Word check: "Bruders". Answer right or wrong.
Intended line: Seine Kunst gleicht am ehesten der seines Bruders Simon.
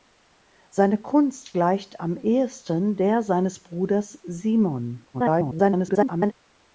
right